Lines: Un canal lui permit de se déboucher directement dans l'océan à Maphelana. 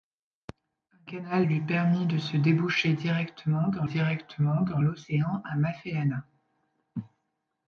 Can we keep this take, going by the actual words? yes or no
no